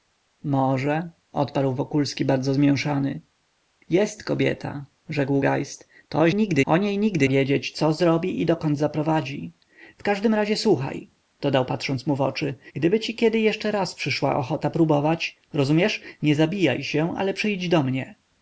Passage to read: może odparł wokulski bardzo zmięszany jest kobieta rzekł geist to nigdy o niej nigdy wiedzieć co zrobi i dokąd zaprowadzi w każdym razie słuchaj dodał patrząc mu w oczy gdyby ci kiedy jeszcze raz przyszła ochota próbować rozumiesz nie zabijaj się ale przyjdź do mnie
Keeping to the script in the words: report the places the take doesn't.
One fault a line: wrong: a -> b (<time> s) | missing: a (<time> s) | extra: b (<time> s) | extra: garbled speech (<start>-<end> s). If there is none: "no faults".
no faults